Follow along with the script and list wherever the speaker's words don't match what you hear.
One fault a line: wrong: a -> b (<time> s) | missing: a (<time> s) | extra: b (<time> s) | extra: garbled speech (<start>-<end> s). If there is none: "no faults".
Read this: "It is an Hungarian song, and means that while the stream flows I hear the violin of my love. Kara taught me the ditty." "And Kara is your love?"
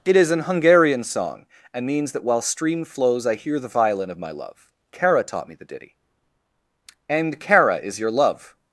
missing: the (2.4 s)